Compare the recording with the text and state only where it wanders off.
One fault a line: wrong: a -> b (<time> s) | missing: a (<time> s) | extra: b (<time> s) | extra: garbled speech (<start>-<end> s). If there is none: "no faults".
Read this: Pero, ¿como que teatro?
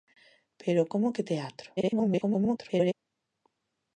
extra: garbled speech (1.8-2.9 s)